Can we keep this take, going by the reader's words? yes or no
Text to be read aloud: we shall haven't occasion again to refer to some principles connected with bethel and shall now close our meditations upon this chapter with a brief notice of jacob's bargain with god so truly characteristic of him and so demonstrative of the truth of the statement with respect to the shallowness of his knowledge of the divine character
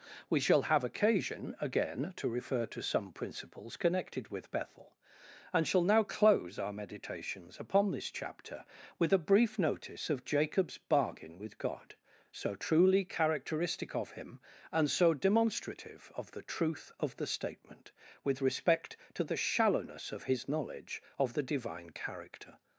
no